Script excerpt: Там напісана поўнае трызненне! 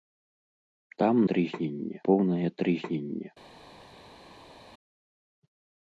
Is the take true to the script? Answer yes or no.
no